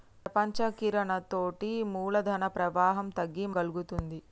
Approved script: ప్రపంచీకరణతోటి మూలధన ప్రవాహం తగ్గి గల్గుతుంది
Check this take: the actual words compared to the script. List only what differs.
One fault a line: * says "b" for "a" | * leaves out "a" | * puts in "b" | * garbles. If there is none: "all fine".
all fine